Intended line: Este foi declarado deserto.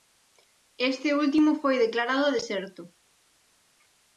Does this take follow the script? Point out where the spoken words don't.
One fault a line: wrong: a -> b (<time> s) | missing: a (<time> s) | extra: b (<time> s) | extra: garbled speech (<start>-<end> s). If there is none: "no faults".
extra: último (1.2 s)